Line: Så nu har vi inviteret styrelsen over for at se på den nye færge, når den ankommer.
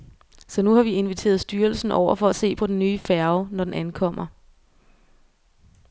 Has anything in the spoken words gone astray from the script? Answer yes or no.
no